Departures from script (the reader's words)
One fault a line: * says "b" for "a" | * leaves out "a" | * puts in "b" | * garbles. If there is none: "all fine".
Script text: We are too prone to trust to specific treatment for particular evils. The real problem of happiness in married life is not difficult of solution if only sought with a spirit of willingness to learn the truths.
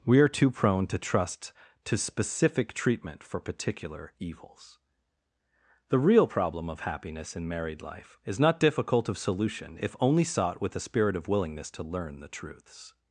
all fine